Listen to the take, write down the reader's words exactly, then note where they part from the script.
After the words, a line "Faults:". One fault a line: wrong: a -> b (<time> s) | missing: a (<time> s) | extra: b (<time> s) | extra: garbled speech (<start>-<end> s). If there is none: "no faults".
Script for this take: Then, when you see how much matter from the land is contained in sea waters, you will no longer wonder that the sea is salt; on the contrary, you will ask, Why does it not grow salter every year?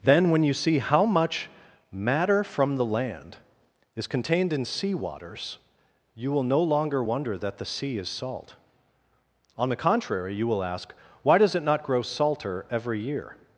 Then, when you see how much matter from the land is contained in sea waters, you will no longer wonder that the sea is salt; on the contrary, you will ask, Why does it not grow salter every year?
Faults:
no faults